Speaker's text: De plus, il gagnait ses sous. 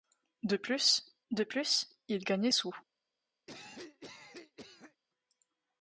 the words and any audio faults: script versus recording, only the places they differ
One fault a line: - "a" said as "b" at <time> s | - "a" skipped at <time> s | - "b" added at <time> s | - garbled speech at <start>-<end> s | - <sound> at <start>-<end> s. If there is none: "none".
- "de plus" added at 1.3 s
- "ses" skipped at 2.5 s
- cough at 3.5-5.0 s